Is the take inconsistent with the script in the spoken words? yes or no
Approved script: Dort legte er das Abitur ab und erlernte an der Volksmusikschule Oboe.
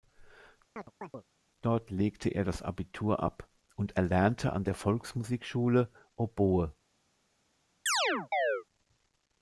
no